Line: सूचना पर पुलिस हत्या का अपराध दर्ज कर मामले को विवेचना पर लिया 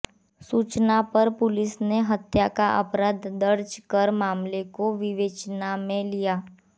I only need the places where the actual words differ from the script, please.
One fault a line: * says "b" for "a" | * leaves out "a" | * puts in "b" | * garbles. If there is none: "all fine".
* puts in "ने"
* says "में" for "पर"